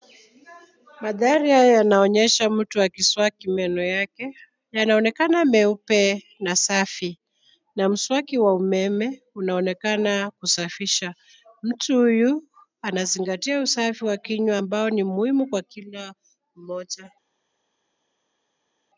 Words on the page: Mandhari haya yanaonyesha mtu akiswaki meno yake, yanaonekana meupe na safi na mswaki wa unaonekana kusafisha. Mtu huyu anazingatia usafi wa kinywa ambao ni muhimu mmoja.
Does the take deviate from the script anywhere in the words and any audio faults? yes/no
yes